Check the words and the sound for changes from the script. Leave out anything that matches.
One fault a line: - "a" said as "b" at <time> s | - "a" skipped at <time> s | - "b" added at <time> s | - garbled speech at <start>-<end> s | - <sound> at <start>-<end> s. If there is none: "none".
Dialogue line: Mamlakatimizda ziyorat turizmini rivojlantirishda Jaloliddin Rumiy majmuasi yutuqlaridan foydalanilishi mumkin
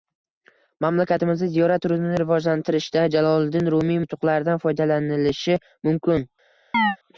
- "majmuasi" skipped at 4.0 s
- chirp at 6.7-7.0 s